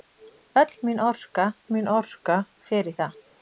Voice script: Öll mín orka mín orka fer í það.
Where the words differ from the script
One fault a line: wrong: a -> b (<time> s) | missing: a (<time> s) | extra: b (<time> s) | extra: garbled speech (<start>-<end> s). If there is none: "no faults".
no faults